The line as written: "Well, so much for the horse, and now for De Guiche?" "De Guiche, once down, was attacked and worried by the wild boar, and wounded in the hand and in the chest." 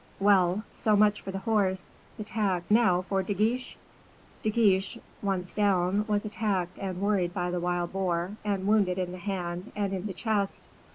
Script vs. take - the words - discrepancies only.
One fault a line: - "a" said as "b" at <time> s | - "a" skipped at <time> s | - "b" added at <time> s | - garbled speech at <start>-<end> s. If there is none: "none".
- "and" said as "attacked" at 2.2 s